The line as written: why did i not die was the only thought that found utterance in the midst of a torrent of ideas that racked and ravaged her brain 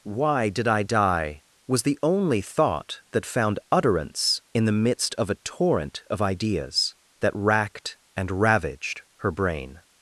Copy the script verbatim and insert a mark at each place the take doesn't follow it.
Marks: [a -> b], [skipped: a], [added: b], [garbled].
why did i [skipped: not] die was the only thought that found utterance in the midst of a torrent of ideas that racked and ravaged her brain